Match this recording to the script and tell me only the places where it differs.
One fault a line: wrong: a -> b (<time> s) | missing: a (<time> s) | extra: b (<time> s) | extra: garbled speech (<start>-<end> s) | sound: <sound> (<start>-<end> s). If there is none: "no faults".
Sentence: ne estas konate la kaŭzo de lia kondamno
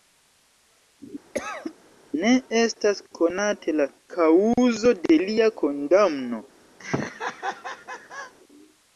sound: cough (1.3-1.7 s)
sound: laugh (6.8-8.3 s)